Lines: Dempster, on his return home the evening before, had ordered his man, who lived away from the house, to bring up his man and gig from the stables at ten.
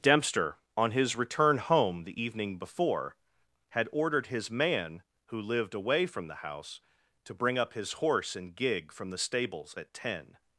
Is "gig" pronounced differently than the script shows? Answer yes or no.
no